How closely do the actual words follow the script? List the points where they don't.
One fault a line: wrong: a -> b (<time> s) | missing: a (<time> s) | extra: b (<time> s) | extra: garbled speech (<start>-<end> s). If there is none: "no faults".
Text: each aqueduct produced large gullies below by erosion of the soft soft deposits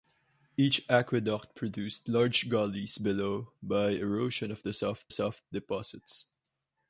no faults